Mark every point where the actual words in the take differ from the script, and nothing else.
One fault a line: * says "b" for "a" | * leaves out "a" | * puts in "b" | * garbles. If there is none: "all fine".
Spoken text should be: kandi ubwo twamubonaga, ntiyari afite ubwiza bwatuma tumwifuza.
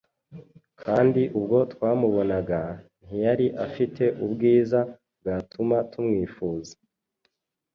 all fine